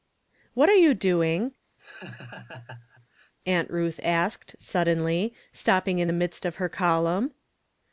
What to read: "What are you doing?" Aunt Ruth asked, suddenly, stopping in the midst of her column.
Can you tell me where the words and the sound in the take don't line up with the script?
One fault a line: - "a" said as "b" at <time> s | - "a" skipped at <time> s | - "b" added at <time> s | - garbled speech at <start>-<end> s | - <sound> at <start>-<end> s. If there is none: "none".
- laugh at 1.8-3.3 s